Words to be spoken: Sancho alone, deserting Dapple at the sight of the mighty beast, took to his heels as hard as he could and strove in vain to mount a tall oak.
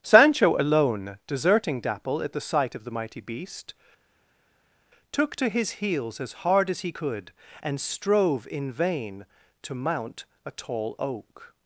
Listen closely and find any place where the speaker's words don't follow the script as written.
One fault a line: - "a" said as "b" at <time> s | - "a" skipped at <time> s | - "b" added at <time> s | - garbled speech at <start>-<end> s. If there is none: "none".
none